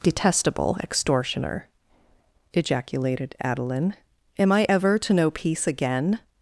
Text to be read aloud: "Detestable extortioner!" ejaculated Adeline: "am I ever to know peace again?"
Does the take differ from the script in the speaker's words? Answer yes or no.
no